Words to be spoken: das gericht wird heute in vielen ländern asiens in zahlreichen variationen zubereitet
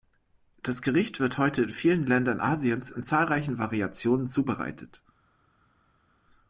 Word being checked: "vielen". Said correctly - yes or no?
yes